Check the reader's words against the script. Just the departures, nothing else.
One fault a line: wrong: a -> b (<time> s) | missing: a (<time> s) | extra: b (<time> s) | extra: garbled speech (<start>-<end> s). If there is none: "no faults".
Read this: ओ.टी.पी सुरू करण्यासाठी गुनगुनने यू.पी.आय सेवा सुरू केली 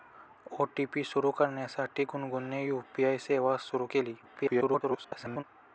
extra: garbled speech (4.2-5.4 s)